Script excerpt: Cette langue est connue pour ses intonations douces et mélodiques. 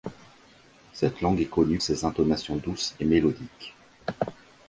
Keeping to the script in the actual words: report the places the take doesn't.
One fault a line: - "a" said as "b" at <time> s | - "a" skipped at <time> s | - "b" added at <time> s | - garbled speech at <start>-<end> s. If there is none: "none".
- "pour" skipped at 1.8 s